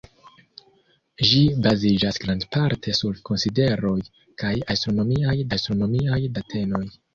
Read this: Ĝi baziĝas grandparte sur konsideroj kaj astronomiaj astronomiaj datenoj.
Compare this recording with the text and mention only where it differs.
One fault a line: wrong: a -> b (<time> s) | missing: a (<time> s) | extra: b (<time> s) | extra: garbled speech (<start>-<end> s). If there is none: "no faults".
no faults